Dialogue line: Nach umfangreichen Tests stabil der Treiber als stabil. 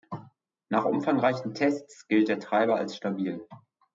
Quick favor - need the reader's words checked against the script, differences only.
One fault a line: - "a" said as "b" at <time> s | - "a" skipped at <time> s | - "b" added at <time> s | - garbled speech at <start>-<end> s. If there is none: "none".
- "stabil" said as "gilt" at 2.1 s